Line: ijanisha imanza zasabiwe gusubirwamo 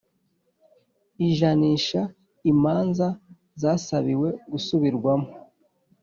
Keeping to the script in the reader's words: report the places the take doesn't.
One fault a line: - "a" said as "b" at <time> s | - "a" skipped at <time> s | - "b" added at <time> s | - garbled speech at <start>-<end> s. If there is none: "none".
none